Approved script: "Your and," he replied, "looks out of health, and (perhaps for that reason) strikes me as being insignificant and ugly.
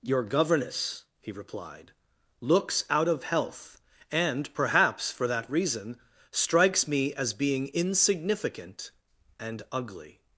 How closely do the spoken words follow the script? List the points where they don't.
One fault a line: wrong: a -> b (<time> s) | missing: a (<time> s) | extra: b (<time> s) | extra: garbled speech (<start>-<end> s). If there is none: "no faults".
wrong: and -> governess (0.2 s)